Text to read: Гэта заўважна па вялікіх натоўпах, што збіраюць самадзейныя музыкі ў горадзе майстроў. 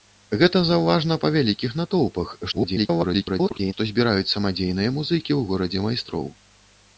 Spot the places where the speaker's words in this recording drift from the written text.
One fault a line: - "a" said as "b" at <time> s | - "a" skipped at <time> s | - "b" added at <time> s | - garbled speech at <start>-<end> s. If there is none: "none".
- garbled speech at 2.5-3.7 s